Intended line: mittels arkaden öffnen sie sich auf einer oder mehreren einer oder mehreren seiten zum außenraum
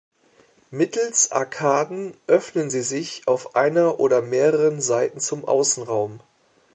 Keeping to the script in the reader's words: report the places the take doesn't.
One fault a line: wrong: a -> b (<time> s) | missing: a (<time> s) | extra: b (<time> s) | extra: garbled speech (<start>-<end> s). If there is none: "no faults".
missing: einer oder mehreren (4.8 s)